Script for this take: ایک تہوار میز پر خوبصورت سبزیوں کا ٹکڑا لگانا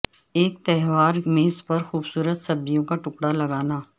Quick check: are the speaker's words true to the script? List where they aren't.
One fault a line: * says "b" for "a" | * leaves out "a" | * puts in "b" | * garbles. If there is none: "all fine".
all fine